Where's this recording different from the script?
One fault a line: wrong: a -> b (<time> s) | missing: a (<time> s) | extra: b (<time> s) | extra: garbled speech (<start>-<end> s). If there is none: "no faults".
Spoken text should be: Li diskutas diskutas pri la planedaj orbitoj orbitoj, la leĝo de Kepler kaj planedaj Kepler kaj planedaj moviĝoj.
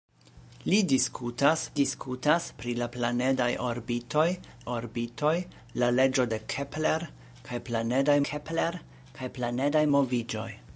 no faults